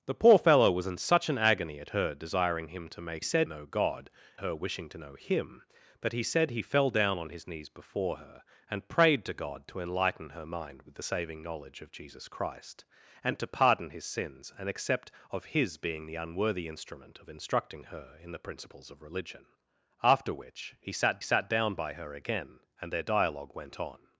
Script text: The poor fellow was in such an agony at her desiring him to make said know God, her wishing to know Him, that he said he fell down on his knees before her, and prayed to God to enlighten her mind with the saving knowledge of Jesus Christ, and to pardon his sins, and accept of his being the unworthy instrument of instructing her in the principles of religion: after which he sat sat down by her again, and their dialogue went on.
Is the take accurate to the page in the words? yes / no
yes